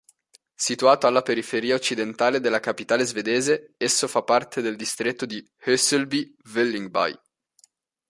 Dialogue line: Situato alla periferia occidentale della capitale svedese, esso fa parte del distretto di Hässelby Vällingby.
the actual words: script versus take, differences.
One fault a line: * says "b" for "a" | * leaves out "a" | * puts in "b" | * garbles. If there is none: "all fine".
all fine